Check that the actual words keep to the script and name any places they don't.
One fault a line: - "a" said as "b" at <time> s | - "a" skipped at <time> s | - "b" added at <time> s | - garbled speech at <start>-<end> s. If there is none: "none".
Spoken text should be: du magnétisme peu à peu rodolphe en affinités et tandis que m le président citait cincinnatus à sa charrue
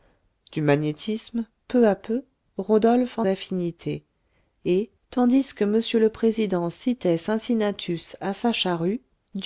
none